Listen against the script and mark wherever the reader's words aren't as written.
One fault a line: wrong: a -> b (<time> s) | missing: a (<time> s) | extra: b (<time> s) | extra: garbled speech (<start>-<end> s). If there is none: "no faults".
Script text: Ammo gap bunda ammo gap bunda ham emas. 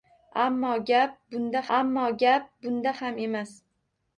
no faults